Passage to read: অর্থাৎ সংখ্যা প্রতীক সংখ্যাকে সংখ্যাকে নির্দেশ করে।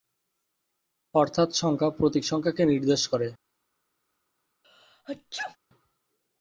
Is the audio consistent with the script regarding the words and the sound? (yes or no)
no